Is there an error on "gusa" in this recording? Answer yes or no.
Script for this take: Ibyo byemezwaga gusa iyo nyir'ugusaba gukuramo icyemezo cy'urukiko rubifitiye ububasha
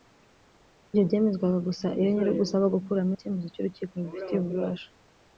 no